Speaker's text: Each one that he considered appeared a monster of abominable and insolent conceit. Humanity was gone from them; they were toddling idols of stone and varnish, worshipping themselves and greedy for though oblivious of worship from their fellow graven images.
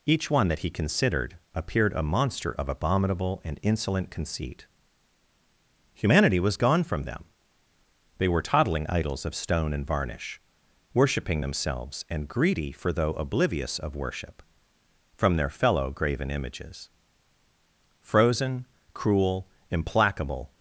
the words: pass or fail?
fail